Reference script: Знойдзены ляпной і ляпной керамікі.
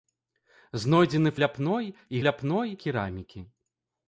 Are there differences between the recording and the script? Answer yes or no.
no